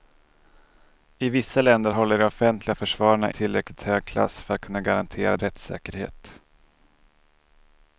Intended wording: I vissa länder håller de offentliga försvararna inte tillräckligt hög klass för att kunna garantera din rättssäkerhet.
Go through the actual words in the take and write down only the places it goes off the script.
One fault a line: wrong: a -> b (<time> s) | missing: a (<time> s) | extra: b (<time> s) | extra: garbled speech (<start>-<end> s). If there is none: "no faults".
missing: inte (3.3 s)
missing: din (5.4 s)